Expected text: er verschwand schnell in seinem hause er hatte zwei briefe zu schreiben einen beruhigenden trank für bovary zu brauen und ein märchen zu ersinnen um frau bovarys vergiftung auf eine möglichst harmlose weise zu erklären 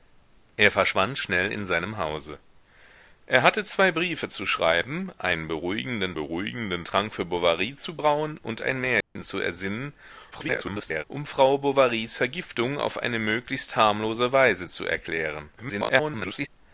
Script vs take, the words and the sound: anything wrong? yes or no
yes